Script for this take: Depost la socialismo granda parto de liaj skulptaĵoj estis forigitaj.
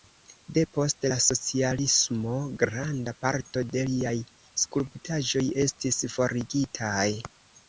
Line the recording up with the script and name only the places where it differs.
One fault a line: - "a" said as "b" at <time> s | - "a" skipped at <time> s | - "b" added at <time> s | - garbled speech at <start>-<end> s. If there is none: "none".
none